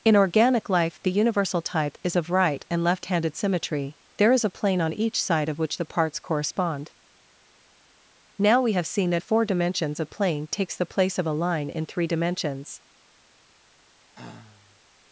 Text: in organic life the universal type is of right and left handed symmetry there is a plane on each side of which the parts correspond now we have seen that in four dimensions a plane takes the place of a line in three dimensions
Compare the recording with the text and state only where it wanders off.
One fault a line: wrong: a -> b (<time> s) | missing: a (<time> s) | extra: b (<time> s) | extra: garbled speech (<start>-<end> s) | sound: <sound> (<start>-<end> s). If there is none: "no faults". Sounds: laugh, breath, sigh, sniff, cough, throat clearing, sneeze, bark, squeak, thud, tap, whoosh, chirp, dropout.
missing: in (9.2 s)
sound: sigh (14.1-14.8 s)